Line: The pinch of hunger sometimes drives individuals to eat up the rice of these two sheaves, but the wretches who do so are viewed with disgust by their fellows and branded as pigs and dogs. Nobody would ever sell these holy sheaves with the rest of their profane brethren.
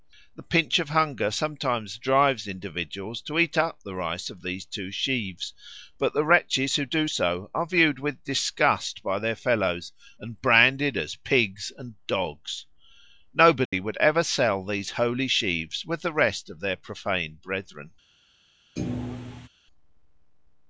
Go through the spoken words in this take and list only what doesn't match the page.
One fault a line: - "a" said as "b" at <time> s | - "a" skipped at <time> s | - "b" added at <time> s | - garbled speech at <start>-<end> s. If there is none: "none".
none